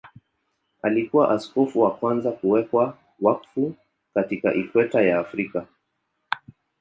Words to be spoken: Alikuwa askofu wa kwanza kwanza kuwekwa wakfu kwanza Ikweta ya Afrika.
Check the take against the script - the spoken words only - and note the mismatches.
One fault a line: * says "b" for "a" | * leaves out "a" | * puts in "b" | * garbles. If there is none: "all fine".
* leaves out "kwanza"
* says "katika" for "kwanza"